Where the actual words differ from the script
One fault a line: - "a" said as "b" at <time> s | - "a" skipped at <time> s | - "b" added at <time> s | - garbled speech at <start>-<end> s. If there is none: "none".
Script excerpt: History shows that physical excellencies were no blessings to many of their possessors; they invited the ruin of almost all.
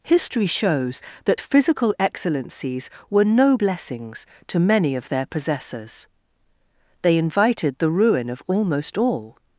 none